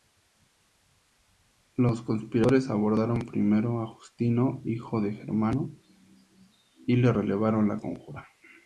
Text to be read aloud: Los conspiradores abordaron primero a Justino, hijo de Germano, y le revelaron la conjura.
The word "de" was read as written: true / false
true